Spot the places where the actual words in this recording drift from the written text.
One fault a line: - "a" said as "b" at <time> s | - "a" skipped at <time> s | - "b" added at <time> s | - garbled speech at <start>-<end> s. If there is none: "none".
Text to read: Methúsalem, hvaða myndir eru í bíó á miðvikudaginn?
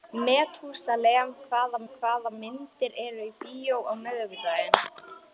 - "hvaða" added at 1.9 s